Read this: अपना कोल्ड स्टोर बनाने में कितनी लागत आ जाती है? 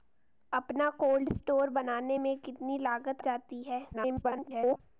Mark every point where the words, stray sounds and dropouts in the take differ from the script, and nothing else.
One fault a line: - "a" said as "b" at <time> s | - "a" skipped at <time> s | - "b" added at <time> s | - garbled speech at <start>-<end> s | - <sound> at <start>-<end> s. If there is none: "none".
- "आ" skipped at 3.2 s
- garbled speech at 3.9-4.8 s